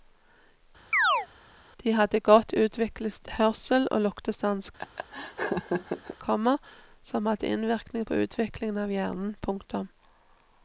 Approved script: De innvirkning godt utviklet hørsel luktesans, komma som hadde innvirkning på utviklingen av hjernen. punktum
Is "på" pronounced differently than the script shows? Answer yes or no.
no